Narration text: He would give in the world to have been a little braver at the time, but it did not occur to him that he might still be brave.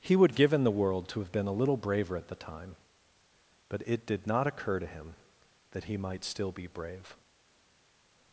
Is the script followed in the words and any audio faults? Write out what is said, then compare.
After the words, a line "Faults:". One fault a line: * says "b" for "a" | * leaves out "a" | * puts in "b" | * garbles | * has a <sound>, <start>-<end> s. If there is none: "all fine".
He would give in the world to have been a little braver at the time, but it did not occur to him that he might still be brave.
Faults:
all fine